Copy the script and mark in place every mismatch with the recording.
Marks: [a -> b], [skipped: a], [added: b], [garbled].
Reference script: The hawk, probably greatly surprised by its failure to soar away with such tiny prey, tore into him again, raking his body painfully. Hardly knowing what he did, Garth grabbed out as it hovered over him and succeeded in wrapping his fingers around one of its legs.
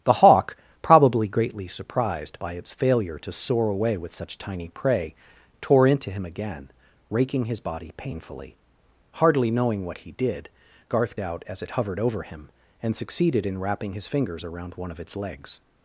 The hawk, probably greatly surprised by its failure to soar away with such tiny prey, tore into him again, raking his body painfully. Hardly knowing what he did, Garth [skipped: grabbed] out as it hovered over him and succeeded in wrapping his fingers around one of its legs.